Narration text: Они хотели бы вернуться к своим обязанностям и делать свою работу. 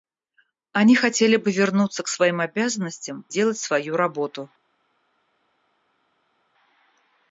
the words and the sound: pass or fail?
fail